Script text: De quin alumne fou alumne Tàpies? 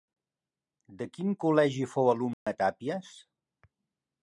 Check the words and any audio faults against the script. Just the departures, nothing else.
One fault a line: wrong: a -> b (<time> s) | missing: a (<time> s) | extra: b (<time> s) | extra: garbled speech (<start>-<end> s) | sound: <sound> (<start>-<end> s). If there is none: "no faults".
wrong: alumne -> col·legi (1.4 s)
sound: dropout (2.3-2.5 s)